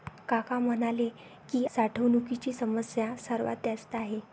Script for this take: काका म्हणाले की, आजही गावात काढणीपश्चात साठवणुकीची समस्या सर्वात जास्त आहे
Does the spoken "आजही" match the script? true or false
false